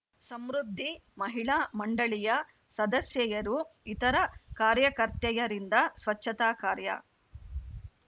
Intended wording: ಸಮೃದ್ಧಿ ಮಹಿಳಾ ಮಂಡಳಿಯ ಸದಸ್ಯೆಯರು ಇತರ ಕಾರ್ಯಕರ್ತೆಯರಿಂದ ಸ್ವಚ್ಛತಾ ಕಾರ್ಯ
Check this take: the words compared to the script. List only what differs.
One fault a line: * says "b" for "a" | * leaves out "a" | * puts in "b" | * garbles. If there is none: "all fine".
all fine